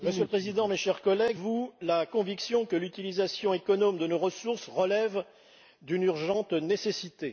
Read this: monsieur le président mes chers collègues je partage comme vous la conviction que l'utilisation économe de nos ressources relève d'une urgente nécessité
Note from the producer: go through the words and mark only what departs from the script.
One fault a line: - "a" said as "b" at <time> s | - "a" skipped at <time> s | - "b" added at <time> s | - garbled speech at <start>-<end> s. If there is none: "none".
- "je partage comme" skipped at 1.4 s